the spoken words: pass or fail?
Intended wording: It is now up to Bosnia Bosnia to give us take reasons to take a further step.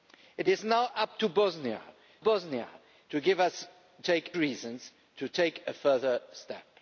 pass